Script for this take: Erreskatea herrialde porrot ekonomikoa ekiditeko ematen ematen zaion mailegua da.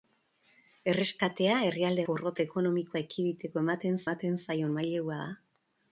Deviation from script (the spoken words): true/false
false